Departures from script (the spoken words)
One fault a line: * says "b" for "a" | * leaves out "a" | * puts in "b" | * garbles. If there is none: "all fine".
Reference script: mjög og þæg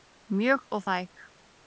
all fine